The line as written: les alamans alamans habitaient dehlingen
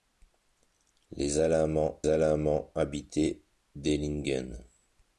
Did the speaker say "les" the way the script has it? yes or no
yes